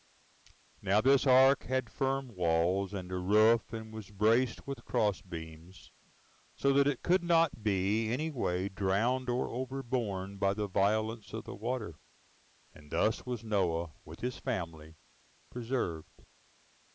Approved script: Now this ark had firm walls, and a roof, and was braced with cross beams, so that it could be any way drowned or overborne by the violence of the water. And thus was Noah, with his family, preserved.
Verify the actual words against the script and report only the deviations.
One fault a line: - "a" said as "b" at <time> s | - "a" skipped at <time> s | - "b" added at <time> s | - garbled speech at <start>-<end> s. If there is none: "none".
- "not" added at 7.2 s